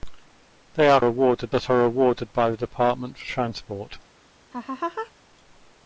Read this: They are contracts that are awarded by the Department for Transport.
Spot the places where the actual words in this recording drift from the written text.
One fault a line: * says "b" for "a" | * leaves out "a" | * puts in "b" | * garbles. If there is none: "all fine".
* says "awarded" for "contracts"